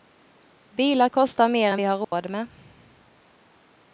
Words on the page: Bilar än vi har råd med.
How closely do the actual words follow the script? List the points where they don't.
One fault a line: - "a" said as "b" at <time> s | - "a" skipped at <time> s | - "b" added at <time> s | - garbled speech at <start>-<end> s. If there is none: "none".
- "kostar mer" added at 1.1 s